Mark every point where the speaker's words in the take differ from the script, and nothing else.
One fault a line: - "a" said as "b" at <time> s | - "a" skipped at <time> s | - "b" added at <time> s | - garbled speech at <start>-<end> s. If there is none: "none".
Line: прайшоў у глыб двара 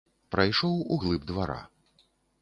none